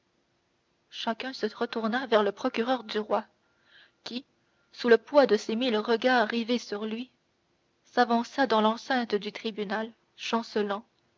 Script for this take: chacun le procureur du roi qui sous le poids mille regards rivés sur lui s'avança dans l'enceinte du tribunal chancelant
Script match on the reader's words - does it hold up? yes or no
no